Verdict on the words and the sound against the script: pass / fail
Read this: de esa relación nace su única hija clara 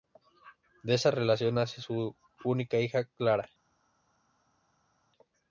pass